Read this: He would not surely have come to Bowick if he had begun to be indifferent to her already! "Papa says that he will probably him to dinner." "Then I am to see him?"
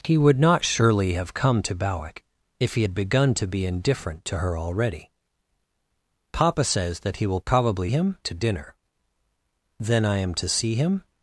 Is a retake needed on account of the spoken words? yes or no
no